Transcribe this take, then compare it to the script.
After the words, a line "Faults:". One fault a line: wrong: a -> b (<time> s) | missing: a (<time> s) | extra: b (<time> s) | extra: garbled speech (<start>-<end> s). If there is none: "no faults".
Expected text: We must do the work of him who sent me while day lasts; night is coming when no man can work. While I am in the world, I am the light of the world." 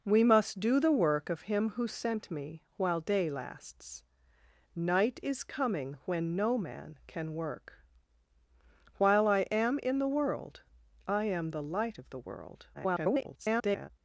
We must do the work of him who sent me while day lasts; night is coming when no man can work. While I am in the world, I am the light of the world." [garbled]
Faults:
extra: garbled speech (12.7-13.9 s)